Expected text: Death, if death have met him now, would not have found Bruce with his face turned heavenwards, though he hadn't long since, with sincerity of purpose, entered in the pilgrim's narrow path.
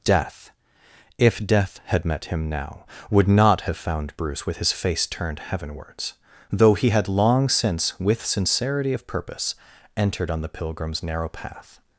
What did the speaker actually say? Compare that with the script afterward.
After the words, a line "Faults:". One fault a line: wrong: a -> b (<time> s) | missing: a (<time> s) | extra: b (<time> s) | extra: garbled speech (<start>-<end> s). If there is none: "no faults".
Death, if death had met him now, would not have found Bruce with his face turned heavenwards, though he had long since, with sincerity of purpose, entered on the pilgrim's narrow path.
Faults:
wrong: have -> had (1.9 s)
wrong: hadn't -> had (6.9 s)
wrong: in -> on (10.3 s)